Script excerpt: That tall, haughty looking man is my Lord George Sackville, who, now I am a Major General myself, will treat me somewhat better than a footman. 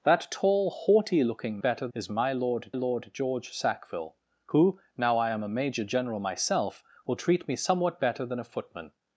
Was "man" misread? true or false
true